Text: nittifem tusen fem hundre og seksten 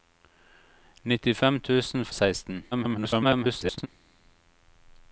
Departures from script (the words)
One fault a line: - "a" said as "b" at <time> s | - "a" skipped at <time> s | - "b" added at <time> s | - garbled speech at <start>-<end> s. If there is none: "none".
- "fem hundre" skipped at 2.1 s
- garbled speech at 2.7-3.9 s